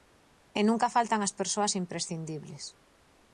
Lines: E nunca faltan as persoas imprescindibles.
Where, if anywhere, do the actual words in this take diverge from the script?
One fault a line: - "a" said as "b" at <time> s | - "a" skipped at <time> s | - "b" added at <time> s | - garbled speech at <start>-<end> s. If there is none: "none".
none